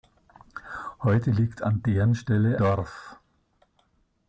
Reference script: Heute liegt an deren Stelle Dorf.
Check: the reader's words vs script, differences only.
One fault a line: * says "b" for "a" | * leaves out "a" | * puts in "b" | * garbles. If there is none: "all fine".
all fine